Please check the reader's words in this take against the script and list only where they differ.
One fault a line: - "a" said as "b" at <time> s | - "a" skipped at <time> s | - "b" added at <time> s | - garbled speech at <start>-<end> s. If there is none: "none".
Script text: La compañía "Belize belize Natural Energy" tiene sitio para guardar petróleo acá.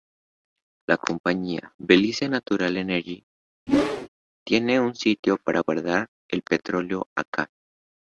- "belize" skipped at 2.3 s
- "un" added at 4.8 s
- "el" added at 6.3 s